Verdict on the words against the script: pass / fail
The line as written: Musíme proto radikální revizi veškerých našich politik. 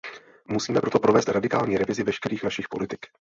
fail